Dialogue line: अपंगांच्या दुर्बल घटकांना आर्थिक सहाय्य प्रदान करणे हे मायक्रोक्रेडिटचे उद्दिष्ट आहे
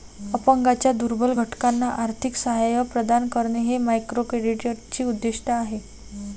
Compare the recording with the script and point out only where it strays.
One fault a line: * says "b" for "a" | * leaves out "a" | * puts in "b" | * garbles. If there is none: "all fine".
all fine